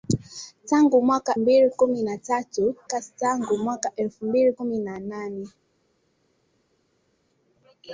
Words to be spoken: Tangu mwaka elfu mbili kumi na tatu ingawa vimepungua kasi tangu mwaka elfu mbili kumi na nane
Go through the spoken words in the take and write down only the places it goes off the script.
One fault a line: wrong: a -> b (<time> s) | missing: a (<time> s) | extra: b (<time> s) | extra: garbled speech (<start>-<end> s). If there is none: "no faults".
missing: elfu (1.4 s)
missing: ingawa vimepungua (2.7 s)